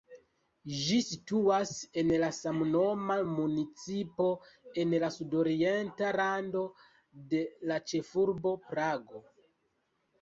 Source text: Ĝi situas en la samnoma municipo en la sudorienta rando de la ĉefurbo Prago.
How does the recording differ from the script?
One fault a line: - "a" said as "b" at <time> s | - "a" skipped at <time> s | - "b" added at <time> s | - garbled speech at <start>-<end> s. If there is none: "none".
none